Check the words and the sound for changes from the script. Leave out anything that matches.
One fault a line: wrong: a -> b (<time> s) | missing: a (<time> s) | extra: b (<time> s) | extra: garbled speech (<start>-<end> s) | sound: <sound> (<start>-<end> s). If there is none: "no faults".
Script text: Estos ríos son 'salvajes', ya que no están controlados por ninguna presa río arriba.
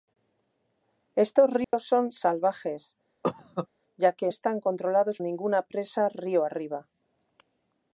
sound: dropout (1.6-1.7 s)
sound: cough (3.2-3.7 s)
missing: no (4.3 s)
missing: por (5.2 s)